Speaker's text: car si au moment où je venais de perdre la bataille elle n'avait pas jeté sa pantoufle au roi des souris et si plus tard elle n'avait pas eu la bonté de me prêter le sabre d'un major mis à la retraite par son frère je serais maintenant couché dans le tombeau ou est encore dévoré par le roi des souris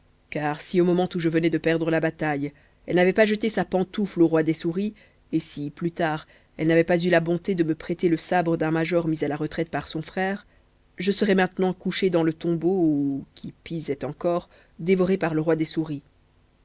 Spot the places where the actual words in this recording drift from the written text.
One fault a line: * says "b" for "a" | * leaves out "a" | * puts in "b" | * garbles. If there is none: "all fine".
* puts in "qui pis"